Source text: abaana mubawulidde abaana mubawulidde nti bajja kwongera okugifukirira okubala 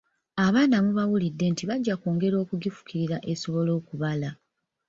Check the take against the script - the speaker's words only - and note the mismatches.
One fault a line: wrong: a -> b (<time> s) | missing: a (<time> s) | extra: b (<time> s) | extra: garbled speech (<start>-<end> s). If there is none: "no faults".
missing: abaana mubawulidde (1.4 s)
extra: esobole (3.3 s)